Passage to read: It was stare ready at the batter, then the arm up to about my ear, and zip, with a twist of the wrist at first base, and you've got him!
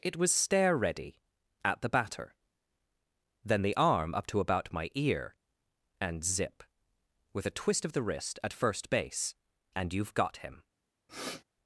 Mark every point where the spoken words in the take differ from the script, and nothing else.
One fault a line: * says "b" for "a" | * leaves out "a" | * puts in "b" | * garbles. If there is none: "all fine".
all fine